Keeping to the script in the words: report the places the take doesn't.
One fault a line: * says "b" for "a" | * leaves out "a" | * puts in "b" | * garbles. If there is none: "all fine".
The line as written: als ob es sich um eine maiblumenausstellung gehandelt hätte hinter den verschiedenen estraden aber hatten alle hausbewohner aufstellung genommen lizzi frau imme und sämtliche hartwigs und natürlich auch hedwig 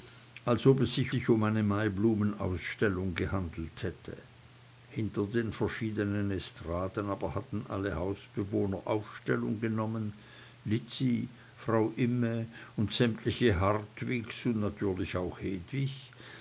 * puts in "sich"